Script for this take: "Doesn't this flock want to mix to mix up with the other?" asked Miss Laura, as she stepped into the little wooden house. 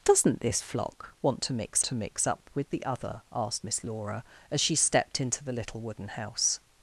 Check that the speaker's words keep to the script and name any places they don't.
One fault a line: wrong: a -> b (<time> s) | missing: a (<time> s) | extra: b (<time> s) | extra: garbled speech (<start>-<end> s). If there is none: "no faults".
no faults